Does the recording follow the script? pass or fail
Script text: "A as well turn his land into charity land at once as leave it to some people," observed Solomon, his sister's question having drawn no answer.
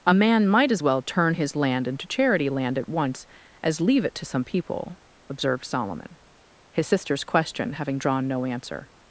fail